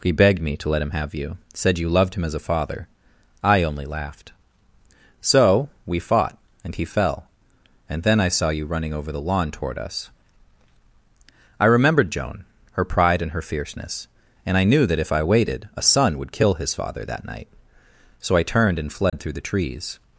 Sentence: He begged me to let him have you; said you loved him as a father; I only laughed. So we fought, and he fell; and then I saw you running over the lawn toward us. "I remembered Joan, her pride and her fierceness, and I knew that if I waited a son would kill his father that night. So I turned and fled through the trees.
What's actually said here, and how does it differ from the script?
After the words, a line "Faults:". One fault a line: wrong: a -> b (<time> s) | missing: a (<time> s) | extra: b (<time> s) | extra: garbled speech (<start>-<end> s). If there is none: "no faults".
He begged me to let him have you; said you loved him as a father; I only laughed. So we fought, and he fell; and then I saw you running over the lawn toward us. "I remembered Joan, her pride and her fierceness, and I knew that if I waited a son would kill his father that night. So I turned and fled through the trees.
Faults:
no faults